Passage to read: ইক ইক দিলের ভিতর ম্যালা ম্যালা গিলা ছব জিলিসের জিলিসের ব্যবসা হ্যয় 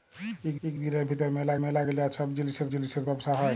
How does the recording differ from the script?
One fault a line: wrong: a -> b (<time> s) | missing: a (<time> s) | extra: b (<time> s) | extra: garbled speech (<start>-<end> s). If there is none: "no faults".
no faults